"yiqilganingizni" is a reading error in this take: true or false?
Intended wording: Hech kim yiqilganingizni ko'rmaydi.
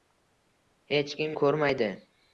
true